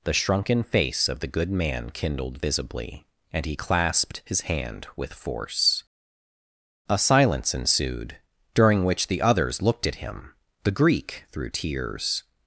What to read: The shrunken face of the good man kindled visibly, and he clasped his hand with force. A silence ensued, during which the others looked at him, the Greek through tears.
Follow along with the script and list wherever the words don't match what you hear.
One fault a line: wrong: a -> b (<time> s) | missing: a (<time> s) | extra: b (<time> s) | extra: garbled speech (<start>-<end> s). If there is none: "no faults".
no faults